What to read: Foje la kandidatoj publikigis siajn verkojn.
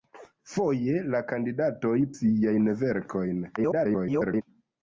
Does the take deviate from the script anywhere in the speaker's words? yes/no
yes